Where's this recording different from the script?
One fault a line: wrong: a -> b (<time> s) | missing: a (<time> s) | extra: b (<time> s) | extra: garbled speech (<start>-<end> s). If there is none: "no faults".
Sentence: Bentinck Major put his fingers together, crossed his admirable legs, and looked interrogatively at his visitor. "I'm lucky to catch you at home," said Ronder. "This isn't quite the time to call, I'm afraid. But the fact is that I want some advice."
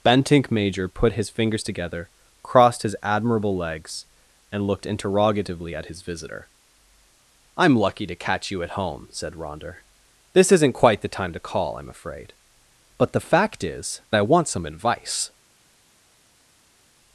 missing: that (14.0 s)